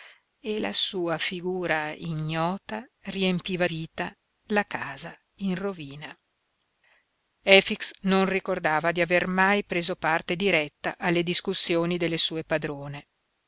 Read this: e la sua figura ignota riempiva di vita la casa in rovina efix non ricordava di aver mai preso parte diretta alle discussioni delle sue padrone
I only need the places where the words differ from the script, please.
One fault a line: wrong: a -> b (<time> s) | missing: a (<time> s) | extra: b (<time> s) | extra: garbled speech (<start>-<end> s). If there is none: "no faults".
missing: di (3.7 s)